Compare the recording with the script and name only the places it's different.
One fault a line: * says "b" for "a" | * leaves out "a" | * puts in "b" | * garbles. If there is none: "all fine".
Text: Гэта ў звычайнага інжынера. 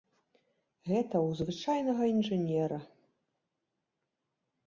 all fine